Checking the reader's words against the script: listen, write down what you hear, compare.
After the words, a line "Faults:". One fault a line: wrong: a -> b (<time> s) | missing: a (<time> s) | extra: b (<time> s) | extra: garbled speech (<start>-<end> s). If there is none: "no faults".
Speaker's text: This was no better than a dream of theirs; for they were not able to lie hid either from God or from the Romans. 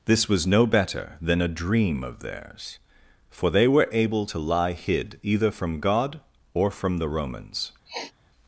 This was no better than a dream of theirs; for they were able to lie hid either from God or from the Romans.
Faults:
missing: not (3.9 s)